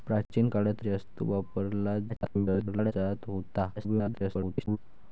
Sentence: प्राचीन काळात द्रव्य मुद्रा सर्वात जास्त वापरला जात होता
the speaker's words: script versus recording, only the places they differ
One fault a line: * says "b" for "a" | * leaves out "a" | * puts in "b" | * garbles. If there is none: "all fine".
* leaves out "द्रव्य मुद्रा सर्वात"
* garbles
* garbles